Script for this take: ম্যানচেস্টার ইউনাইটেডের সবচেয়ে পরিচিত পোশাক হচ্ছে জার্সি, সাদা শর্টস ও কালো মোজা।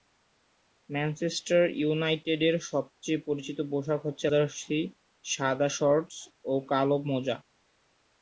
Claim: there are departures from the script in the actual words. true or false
false